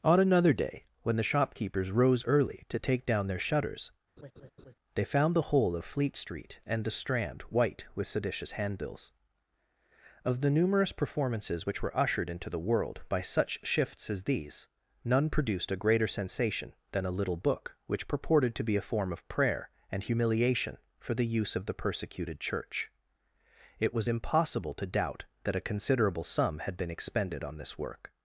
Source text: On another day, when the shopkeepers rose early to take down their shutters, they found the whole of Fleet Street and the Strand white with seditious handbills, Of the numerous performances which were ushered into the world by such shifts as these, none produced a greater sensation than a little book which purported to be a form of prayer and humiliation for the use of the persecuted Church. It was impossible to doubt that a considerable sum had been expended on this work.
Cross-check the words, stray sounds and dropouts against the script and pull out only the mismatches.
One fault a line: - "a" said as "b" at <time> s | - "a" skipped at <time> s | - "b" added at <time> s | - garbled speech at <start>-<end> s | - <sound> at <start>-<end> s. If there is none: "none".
- laugh at 4.2-4.7 s